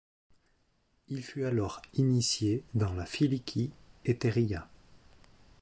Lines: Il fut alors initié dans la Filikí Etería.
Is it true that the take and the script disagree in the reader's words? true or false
false